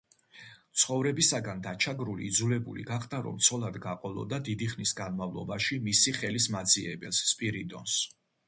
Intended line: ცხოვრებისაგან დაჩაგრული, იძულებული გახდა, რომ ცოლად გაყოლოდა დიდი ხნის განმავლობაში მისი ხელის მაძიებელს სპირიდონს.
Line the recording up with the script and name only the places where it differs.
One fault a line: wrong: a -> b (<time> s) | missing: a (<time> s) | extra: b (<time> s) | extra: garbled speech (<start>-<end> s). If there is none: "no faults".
no faults